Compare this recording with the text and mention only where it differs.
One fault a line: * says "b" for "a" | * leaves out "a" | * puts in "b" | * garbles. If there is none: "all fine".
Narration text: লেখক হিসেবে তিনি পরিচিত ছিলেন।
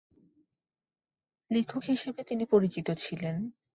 all fine